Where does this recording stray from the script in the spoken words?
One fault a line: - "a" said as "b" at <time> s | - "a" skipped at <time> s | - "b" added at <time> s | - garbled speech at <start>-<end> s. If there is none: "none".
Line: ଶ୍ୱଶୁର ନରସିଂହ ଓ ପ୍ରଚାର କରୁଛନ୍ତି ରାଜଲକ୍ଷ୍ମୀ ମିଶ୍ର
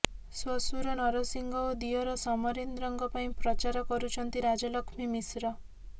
- "ଦିଅର ସମରେନ୍ଦ୍ରଙ୍କ ପାଇଁ" added at 1.8 s